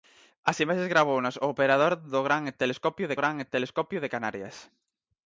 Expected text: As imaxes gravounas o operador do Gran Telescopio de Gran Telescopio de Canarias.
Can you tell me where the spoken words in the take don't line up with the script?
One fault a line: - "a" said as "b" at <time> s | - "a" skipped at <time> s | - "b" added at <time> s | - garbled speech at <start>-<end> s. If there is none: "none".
none